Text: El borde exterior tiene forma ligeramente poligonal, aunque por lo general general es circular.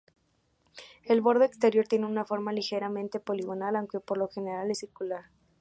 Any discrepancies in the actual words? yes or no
yes